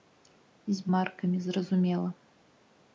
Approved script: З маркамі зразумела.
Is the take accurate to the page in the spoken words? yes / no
yes